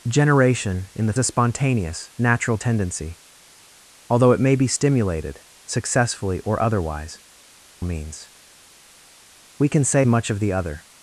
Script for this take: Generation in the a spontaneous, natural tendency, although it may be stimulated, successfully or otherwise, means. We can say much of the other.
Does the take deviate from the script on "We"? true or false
false